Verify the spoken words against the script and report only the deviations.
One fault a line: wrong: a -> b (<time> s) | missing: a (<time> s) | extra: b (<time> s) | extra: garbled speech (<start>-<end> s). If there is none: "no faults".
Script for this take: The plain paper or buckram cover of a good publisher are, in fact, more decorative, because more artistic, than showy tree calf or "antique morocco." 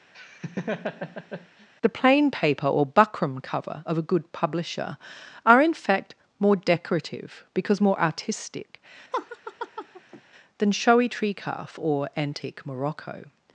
no faults